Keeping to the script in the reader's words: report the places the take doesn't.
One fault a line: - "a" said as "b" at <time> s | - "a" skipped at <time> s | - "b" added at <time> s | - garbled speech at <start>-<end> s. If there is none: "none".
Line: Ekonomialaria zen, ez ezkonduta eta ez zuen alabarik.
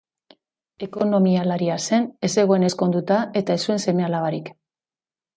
- "zegoen" added at 2.4 s
- "seme" added at 3.9 s